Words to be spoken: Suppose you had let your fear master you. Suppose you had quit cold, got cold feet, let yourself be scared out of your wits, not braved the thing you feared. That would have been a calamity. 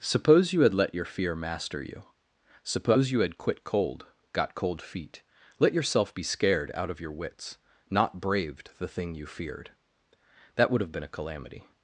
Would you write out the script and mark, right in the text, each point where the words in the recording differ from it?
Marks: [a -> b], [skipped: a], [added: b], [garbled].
Suppose you had let your fear master you. Suppose you had quit cold, got cold feet, let yourself be scared out of your wits, not braved the thing you feared. That would have been a calamity.